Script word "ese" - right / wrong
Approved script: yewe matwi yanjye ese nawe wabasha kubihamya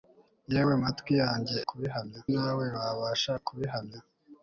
wrong